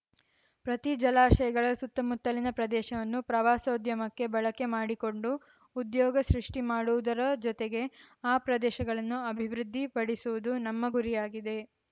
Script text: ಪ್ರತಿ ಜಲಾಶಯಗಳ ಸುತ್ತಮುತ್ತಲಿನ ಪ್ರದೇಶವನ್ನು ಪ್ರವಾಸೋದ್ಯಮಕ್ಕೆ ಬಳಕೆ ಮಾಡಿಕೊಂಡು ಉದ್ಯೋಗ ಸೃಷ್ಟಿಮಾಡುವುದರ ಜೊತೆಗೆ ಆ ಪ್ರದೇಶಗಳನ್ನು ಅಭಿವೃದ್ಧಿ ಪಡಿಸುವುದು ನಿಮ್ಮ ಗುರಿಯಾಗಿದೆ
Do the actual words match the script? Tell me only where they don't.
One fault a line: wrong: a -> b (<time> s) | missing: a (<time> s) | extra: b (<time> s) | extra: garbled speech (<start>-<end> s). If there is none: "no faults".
wrong: ನಿಮ್ಮ -> ನಮ್ಮ (10.7 s)